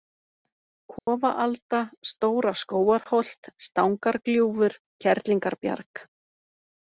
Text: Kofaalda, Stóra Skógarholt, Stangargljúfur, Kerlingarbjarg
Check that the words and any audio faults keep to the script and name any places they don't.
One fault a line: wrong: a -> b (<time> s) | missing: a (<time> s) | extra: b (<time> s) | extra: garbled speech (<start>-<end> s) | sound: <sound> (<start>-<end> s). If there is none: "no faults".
sound: dropout (1.0-1.1 s)